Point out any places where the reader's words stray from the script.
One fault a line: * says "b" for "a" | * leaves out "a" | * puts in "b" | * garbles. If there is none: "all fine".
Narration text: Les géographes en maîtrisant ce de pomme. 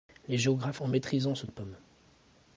all fine